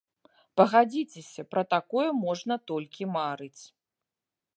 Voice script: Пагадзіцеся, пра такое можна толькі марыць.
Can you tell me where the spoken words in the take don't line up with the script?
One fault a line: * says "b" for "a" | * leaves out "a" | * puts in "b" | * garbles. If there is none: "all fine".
all fine